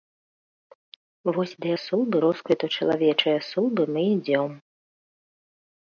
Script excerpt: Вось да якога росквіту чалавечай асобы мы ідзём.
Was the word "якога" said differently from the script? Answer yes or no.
yes